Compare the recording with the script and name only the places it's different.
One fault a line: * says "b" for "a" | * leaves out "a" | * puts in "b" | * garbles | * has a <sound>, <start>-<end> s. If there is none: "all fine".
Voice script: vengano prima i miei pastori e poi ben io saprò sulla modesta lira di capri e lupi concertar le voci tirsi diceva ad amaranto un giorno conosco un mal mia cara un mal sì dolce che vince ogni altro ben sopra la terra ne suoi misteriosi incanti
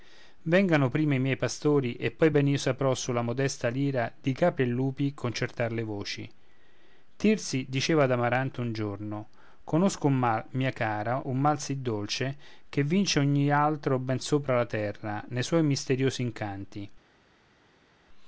all fine